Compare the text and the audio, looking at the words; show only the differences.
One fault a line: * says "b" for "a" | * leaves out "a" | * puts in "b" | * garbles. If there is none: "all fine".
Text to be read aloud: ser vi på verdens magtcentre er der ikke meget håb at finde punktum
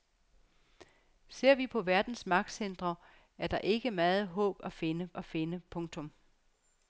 * puts in "at finde"